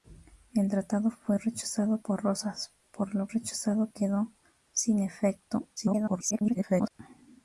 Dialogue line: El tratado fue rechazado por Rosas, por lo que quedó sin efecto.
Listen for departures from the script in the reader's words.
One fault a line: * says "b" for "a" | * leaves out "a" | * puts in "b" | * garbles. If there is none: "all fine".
* says "rechazado" for "que"
* garbles